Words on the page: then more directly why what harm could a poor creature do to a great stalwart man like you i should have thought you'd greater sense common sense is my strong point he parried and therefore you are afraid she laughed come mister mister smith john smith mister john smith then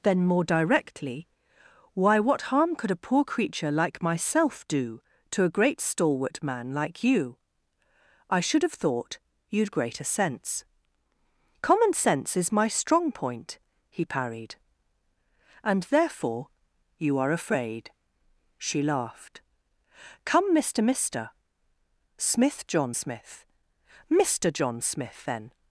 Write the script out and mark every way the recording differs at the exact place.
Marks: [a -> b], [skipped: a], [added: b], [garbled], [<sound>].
then more directly why what harm could a poor creature [added: like myself] do to a great stalwart man like you i should have thought you'd greater sense common sense is my strong point he parried and therefore you are afraid she laughed come mister mister smith john smith mister john smith then